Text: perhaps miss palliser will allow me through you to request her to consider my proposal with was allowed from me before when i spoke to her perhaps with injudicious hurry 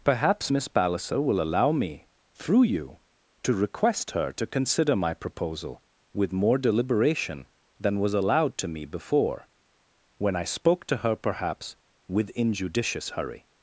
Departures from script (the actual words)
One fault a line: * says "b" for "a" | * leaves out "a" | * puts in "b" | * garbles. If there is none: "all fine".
* puts in "more deliberation than"
* says "to" for "from"